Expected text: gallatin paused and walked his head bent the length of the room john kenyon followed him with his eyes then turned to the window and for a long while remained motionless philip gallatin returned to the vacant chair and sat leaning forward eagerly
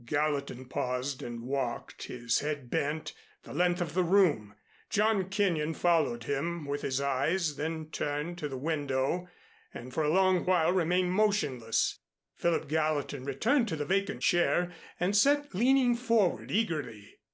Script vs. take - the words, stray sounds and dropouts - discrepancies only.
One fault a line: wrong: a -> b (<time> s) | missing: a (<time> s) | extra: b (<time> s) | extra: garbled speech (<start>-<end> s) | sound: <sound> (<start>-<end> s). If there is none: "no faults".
no faults